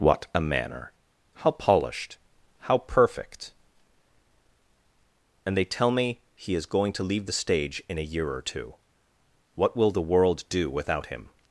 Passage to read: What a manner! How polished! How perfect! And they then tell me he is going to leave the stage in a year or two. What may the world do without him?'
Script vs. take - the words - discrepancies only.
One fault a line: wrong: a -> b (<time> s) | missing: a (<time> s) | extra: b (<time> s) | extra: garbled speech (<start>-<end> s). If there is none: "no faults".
missing: then (5.7 s)
wrong: may -> will (9.7 s)